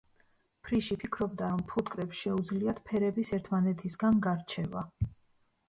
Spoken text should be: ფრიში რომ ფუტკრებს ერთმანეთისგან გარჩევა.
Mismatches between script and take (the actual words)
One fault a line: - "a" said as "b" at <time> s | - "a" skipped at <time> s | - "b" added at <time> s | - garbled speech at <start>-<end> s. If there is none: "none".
- "ფიქრობდა" added at 1.0 s
- "შეუძლიათ ფერების" added at 2.3 s